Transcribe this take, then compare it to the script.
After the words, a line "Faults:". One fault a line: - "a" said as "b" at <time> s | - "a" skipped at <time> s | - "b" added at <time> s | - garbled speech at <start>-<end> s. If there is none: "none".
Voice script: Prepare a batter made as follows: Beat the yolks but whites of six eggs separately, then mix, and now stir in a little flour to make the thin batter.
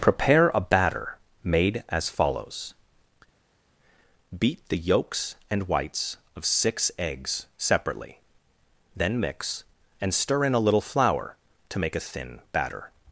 Prepare a batter made as follows: Beat the yolks and whites of six eggs separately, then mix, and stir in a little flour to make a thin batter.
Faults:
- "but" said as "and" at 5.5 s
- "now" skipped at 10.1 s
- "the" said as "a" at 12.0 s